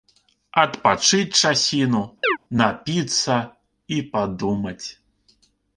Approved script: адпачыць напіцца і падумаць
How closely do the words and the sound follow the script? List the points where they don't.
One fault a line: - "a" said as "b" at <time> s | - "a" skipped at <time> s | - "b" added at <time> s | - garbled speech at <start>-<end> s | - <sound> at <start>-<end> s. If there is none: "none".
- "часіну" added at 1.4 s
- chirp at 2.2-2.4 s